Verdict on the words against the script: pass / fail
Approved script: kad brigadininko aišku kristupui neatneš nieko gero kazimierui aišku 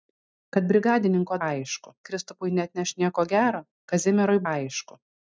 pass